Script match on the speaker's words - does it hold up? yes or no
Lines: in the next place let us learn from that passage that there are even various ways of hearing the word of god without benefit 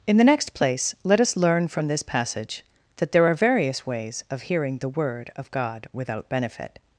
no